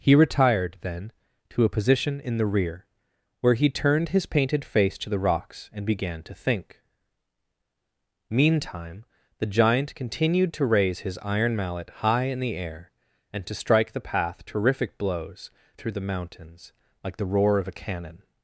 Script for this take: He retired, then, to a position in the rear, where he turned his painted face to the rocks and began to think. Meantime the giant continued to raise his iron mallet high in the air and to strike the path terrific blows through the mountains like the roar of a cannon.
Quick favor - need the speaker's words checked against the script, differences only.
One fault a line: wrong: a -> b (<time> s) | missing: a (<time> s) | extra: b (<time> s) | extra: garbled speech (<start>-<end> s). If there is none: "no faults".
no faults